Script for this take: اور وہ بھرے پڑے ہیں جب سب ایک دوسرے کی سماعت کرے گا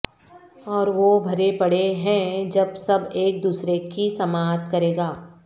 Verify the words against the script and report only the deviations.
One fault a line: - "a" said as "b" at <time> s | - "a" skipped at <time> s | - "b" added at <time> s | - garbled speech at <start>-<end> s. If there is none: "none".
none